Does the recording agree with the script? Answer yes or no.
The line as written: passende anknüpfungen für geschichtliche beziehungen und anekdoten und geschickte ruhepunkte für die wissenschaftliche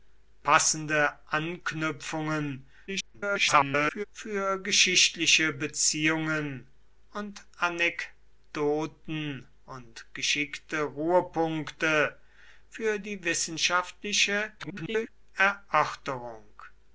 no